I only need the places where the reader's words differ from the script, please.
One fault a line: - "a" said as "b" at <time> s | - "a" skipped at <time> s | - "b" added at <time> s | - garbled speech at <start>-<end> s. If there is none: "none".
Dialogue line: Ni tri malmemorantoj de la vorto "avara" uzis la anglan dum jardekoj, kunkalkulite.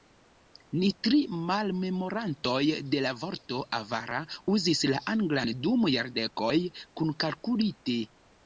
none